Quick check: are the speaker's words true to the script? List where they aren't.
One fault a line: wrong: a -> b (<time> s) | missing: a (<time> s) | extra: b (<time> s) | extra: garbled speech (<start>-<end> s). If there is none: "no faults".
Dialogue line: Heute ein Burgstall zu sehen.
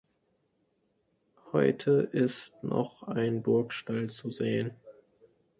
extra: ist noch (2.1 s)